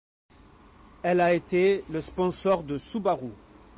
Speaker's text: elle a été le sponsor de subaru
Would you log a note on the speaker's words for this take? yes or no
no